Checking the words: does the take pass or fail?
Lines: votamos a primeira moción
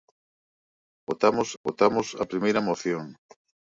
fail